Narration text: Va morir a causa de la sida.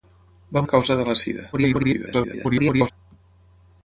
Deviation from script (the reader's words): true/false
true